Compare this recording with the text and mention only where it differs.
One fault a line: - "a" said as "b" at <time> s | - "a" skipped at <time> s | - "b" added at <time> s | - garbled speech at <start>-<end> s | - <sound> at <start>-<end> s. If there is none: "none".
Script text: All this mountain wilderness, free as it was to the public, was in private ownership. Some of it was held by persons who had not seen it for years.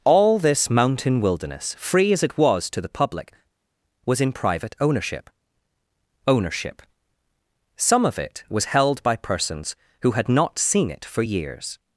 - "ownership" added at 6.3 s